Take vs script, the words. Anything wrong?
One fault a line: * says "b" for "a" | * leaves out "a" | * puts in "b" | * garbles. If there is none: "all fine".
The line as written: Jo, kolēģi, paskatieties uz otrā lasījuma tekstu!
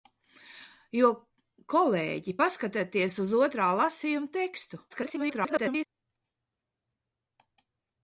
* garbles